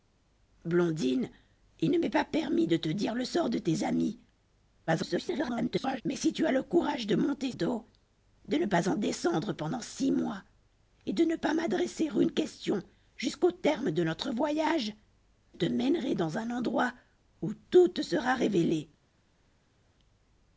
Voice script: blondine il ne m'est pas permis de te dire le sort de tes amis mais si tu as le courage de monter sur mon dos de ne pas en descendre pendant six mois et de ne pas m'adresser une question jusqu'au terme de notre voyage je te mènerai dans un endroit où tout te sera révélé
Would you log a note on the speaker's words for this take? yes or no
yes